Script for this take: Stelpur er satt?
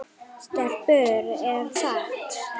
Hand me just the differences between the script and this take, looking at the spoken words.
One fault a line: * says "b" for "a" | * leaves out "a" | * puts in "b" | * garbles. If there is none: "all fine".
all fine